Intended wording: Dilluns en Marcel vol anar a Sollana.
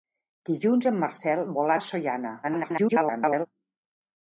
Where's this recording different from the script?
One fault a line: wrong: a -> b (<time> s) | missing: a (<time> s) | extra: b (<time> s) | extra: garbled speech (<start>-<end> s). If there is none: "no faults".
missing: anar (1.8 s)
extra: garbled speech (2.4-3.5 s)